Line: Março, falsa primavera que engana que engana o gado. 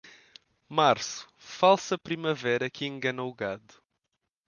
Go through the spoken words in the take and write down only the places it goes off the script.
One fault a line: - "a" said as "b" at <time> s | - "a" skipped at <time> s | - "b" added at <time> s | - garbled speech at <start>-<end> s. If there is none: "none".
- "que engana" skipped at 3.2 s